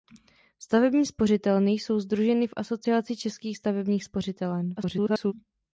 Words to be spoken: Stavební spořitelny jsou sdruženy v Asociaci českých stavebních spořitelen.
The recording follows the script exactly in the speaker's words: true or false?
false